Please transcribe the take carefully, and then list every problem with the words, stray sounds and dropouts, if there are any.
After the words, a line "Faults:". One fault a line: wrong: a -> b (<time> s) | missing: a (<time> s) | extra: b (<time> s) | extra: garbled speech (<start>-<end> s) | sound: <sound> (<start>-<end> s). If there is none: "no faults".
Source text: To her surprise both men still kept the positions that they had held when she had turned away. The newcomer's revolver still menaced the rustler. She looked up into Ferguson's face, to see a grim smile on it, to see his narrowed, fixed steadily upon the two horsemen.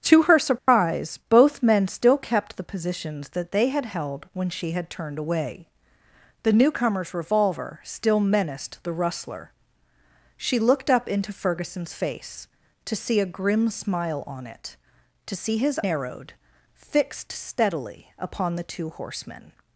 To her surprise both men still kept the positions that they had held when she had turned away. The newcomer's revolver still menaced the rustler. She looked up into Ferguson's face, to see a grim smile on it, to see his narrowed, fixed steadily upon the two horsemen.
Faults:
sound: dropout (0.6-0.7 s)